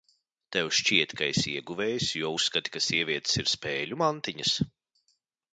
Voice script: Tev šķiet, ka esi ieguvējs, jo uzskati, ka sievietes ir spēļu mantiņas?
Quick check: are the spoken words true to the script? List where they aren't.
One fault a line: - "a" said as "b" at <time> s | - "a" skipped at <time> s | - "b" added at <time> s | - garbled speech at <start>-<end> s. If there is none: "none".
none